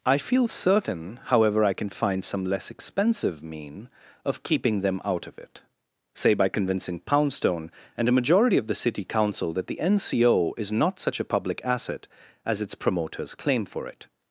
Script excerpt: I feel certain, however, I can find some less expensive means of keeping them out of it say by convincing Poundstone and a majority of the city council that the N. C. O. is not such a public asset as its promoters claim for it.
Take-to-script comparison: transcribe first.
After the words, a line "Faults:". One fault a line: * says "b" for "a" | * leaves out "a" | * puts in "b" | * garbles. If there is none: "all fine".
I feel certain, however, I can find some less expensive mean of keeping them out of it say by convincing Poundstone and a majority of the city council that the N. C. O. is not such a public asset as its promoters claim for it.
Faults:
* says "mean" for "means"